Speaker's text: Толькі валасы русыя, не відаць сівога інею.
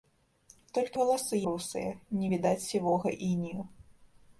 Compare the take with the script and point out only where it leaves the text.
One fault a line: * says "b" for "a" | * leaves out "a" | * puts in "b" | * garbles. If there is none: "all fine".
all fine